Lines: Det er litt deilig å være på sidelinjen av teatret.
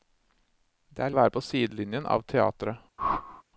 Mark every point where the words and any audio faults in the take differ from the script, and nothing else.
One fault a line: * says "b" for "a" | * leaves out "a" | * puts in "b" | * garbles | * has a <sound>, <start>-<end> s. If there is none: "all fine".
* leaves out "litt deilig"
* has a whoosh, 3.0-3.4 s